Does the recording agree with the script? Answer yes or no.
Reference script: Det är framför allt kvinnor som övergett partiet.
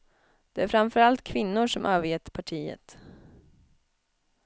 yes